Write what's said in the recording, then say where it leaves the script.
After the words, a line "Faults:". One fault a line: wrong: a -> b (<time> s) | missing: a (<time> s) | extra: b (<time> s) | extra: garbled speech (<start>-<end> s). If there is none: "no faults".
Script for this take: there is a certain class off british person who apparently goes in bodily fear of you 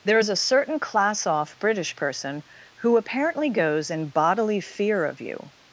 there is a certain class off british person who apparently goes in bodily fear of you
Faults:
no faults